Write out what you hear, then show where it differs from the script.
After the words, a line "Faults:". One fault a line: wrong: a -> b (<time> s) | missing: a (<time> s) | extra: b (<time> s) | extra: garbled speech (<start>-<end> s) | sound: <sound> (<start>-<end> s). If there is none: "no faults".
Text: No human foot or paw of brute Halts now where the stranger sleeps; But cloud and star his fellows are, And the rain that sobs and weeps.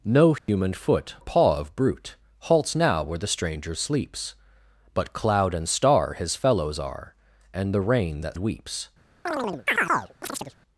No human foot paw of brute Halts now where the stranger sleeps; But cloud and star his fellows are, And the rain that weeps.
Faults:
sound: dropout (0.4-0.5 s)
missing: or (1.2 s)
missing: sobs and (8.4 s)
sound: chirp (9.3-10.5 s)